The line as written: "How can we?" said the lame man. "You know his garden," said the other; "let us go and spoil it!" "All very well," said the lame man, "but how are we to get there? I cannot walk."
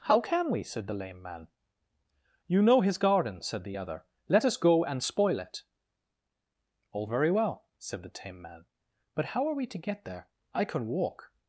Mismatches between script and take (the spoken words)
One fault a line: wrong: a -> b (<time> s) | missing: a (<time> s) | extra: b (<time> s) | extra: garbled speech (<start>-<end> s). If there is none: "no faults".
wrong: lame -> tame (8.1 s)
wrong: cannot -> can (10.6 s)